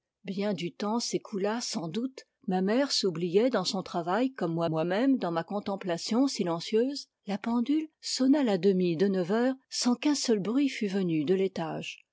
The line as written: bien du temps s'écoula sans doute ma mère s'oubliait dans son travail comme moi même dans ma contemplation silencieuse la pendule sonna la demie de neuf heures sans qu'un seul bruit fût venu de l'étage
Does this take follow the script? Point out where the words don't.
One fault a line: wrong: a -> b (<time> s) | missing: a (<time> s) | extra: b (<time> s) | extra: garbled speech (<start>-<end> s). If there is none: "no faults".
extra: moi (4.7 s)